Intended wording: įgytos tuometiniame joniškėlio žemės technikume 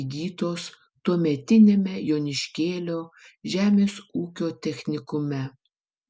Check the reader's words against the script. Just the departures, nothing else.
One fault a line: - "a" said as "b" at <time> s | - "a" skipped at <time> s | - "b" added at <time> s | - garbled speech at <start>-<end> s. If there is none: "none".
- "ūkio" added at 4.2 s